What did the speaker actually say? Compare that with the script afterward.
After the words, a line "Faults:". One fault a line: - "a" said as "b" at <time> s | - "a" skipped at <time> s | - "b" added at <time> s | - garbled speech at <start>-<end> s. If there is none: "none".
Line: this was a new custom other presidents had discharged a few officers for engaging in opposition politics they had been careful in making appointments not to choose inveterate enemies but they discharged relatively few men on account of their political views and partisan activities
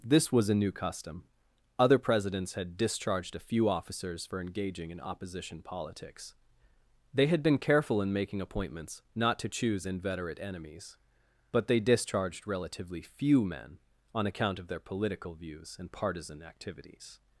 this was a new custom other presidents had discharged a few officers for engaging in opposition politics they had been careful in making appointments not to choose inveterate enemies but they discharged relatively few men on account of their political views and partisan activities
Faults:
none